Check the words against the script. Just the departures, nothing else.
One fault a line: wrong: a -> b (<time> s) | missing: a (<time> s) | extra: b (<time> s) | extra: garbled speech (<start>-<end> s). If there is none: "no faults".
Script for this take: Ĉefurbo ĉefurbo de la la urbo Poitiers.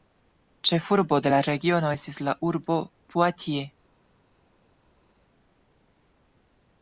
missing: ĉefurbo (1.2 s)
extra: regiono estis (1.5 s)